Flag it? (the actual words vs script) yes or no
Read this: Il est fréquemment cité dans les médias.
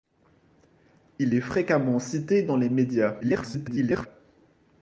yes